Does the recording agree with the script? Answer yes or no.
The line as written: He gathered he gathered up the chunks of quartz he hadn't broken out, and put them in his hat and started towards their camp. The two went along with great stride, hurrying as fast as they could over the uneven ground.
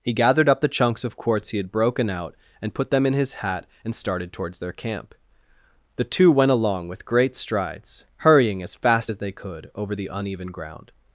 no